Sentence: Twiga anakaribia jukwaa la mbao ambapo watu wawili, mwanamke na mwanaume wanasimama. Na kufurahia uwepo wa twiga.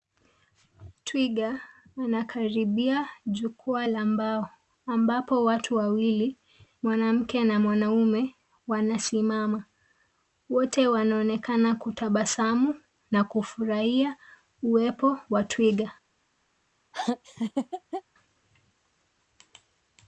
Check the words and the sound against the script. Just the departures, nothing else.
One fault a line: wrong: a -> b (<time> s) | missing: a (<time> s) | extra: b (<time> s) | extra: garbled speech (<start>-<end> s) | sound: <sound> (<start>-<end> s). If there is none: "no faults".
extra: Wote wanaonekana kutabasamu (10.5 s)
sound: laugh (16.9-18.0 s)